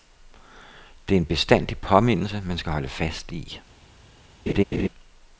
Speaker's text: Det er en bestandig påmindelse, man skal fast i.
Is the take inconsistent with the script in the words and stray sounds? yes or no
yes